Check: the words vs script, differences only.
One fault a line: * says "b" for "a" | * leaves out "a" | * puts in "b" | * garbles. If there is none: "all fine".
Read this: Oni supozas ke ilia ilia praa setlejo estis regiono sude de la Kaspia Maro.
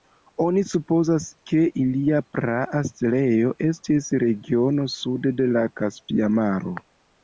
* leaves out "ilia"